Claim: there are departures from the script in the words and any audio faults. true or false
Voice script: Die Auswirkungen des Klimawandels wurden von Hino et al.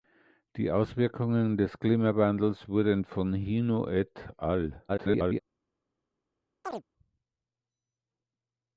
true